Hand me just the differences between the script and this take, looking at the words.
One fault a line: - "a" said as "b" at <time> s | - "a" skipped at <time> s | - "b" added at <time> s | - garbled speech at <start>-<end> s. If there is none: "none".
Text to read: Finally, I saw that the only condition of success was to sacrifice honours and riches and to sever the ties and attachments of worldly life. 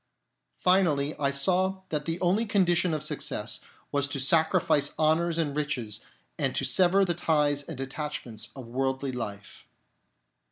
none